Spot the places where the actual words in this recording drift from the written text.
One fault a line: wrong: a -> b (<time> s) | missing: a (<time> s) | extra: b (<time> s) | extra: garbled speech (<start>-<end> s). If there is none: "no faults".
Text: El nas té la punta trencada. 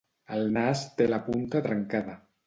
no faults